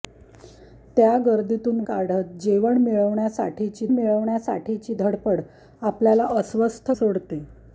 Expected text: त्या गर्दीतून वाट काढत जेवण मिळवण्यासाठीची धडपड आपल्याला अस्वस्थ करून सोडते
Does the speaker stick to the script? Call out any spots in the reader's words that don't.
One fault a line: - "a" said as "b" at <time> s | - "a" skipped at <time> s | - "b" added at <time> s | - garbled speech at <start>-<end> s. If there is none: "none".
- "वाट" skipped at 1.8 s
- "मिळवण्यासाठीची" added at 3.9 s
- "करून" skipped at 6.9 s